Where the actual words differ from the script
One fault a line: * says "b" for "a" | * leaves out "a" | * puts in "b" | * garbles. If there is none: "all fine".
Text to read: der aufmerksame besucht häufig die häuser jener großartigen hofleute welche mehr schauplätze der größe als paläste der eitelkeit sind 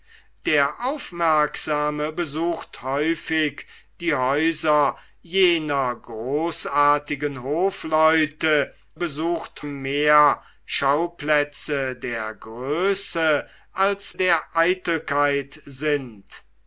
* says "besucht" for "welche"
* leaves out "paläste"